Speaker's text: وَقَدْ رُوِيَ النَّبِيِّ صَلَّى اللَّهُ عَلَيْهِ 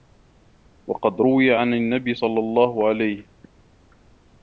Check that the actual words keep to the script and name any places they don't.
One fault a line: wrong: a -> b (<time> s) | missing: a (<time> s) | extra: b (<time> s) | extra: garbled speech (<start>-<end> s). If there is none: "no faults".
extra: عَنْ (1.5 s)